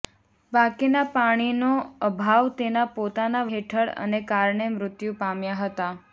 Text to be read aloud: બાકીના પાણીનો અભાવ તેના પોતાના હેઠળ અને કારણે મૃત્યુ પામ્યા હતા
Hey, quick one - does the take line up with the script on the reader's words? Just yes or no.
yes